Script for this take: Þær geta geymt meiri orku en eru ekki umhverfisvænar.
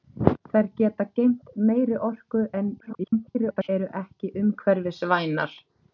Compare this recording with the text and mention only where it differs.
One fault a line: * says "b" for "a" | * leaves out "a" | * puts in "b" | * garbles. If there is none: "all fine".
* garbles